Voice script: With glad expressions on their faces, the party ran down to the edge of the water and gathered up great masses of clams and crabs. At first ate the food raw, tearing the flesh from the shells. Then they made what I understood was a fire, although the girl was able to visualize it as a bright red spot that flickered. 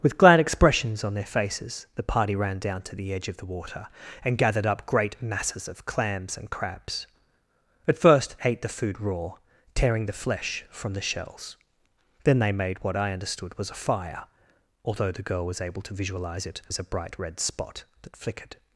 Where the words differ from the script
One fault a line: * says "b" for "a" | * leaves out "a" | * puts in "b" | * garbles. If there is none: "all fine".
all fine